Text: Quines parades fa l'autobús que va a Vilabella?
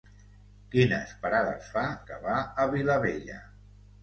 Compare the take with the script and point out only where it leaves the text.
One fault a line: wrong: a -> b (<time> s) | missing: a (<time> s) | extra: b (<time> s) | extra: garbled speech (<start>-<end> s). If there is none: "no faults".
missing: l'autobús (1.8 s)